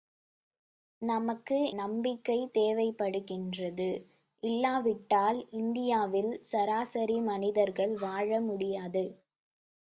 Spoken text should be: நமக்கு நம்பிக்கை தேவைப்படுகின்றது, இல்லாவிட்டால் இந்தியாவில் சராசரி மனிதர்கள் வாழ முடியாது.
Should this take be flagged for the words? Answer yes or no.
no